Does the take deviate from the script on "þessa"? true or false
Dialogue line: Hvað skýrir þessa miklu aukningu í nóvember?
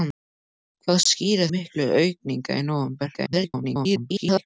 true